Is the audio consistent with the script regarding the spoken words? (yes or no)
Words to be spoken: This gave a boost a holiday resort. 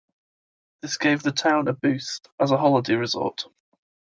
no